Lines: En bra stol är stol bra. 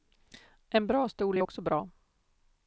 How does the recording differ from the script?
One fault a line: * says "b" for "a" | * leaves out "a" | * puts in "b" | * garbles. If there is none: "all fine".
* says "också" for "stol"